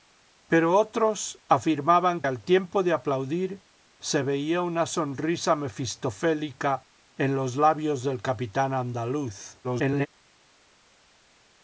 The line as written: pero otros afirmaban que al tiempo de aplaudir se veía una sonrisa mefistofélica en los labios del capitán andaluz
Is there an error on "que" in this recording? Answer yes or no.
yes